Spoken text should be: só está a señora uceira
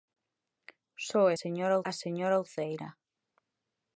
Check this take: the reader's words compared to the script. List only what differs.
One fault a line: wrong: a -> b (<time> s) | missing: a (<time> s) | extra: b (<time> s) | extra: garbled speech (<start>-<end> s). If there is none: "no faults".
wrong: está -> señora (1.4 s)